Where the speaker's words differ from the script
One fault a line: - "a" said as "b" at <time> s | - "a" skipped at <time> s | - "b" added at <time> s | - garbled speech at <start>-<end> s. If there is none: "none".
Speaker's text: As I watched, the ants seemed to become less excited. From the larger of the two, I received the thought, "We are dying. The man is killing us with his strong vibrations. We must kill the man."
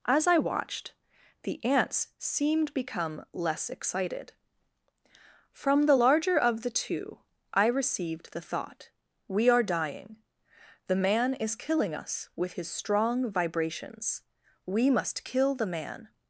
- "to" skipped at 2.7 s